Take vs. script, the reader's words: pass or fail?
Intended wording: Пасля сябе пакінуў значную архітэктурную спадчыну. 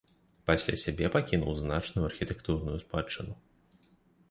pass